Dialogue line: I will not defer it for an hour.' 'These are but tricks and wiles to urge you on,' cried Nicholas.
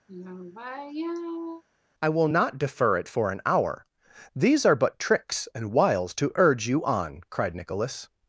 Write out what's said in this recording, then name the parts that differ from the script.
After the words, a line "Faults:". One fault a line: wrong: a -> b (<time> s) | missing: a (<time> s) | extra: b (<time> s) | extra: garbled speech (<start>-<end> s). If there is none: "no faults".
I will not defer it for an hour.' 'These are but tricks and wiles to urge you on,' cried Nicholas.
Faults:
no faults